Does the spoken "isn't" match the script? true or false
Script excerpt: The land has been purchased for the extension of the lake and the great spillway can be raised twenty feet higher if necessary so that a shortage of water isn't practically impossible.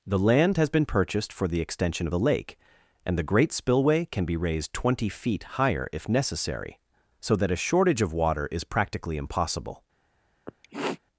false